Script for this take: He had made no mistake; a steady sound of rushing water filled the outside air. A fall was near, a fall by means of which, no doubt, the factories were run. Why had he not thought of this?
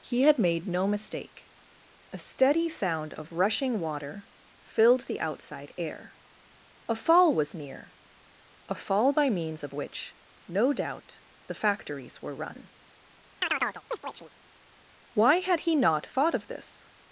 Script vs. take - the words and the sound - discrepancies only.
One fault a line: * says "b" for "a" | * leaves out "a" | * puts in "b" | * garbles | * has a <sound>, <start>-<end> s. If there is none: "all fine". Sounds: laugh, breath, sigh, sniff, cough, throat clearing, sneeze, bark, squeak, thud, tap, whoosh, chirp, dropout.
* has a chirp, 13.4-14.3 s